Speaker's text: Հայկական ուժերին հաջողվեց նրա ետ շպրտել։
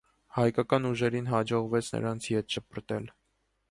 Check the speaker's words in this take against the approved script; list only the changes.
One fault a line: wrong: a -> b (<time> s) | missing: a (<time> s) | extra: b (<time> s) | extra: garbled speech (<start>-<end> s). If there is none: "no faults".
wrong: նրա -> նրանց (2.0 s)